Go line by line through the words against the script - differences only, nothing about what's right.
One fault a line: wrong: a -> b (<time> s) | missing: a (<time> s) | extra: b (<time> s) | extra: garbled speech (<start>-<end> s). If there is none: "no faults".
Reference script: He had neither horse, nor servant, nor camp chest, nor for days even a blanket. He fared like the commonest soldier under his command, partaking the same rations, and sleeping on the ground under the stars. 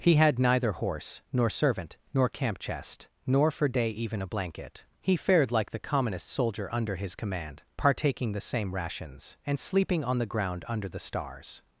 wrong: days -> day (3.7 s)